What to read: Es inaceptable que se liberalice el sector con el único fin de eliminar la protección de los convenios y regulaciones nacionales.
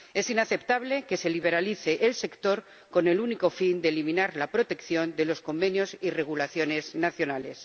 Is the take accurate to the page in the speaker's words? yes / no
yes